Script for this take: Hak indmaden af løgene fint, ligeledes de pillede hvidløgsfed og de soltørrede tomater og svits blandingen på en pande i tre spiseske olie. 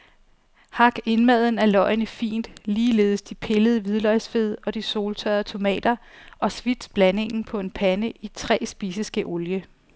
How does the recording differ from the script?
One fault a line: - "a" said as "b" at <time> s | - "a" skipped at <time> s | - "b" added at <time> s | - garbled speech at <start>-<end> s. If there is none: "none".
none